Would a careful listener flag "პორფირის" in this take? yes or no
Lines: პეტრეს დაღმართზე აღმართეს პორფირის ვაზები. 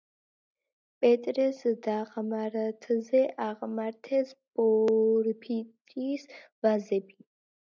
no